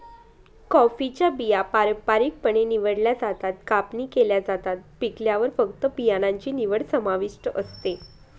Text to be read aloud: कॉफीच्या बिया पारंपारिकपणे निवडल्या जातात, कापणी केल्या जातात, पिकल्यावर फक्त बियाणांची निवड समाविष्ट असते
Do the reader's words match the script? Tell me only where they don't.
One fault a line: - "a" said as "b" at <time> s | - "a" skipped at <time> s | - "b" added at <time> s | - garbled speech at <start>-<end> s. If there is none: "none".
none